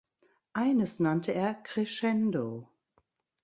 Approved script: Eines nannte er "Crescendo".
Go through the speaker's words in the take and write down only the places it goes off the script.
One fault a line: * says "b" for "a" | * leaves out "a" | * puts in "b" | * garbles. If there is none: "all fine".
all fine